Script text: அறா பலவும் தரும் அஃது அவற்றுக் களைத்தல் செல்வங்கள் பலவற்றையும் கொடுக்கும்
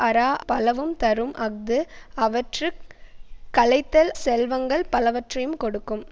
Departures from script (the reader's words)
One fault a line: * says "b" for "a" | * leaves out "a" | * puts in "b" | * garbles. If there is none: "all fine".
all fine